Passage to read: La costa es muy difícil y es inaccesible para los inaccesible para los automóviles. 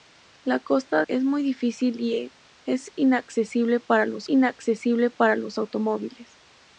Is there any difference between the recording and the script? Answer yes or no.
no